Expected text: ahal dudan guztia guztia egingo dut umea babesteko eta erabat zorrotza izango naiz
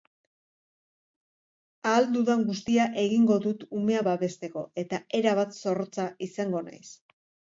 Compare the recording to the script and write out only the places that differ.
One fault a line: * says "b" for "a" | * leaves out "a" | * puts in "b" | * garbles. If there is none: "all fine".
* leaves out "guztia"